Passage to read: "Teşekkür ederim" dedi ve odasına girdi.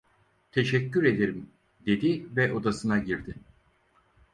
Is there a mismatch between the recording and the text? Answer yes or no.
no